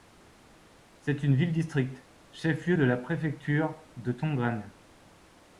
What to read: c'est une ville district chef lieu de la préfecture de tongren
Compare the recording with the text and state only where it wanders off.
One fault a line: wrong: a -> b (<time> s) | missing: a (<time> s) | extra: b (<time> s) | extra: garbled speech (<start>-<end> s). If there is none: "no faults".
no faults